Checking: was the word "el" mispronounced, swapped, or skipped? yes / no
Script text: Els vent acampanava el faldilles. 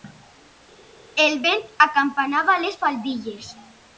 yes